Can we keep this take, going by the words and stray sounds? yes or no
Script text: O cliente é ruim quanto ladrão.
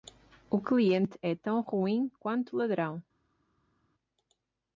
no